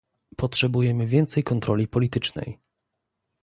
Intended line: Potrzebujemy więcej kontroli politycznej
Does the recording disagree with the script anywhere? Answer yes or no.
no